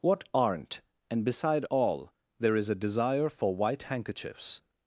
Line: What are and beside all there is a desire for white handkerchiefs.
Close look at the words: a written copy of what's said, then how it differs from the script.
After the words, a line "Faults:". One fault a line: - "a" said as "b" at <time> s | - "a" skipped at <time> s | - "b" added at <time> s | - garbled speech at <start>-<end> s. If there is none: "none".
What aren't and beside all there is a desire for white handkerchiefs.
Faults:
- "are" said as "aren't" at 0.3 s